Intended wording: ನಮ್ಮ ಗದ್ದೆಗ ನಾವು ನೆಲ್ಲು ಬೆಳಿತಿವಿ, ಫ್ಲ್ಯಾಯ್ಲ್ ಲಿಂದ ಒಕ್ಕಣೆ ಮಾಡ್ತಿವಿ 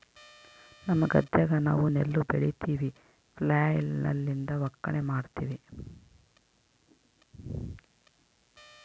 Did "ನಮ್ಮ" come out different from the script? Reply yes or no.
no